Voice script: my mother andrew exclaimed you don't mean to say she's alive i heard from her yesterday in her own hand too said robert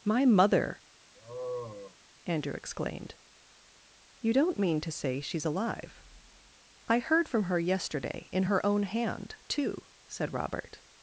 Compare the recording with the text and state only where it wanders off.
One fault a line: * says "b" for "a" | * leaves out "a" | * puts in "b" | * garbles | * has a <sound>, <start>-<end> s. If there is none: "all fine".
* has a sigh, 1.2-2.0 s